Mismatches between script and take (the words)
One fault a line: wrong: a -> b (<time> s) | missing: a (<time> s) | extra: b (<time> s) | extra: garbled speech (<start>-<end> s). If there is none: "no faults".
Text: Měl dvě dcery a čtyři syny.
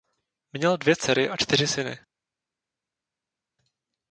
no faults